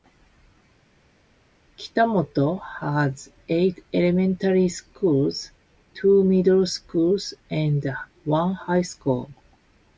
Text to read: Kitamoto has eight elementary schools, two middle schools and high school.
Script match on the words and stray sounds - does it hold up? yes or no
no